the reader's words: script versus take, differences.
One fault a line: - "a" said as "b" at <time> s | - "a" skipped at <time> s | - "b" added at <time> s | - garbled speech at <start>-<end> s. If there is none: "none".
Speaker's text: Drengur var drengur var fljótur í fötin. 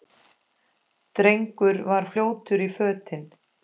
- "drengur var" skipped at 2.1 s